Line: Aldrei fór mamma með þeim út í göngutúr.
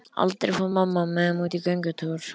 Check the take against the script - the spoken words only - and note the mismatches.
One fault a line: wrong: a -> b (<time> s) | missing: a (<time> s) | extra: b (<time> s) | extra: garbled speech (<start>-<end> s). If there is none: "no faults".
no faults